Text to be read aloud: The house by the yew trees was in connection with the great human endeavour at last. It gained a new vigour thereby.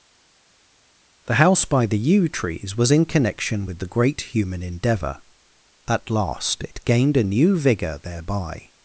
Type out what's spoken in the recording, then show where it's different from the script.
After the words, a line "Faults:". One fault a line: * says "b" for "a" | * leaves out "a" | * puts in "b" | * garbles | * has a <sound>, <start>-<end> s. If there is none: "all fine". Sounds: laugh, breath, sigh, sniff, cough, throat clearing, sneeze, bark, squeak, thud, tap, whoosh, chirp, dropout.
The house by the yew trees was in connection with the great human endeavour at last. It gained a new vigour thereby.
Faults:
all fine